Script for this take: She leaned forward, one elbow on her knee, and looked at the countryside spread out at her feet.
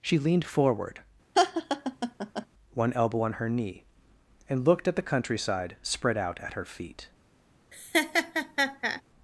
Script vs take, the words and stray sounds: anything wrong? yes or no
yes